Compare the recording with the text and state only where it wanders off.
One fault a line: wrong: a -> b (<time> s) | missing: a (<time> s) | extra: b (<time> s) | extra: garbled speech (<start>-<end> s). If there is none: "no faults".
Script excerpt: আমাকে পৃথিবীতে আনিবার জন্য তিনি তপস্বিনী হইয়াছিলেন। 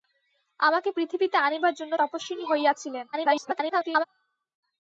missing: তিনি (1.9 s)
extra: garbled speech (3.1-4.0 s)